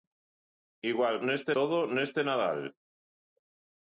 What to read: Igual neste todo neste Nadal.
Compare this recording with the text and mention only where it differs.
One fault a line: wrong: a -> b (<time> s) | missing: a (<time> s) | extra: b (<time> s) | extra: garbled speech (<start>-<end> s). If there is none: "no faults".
no faults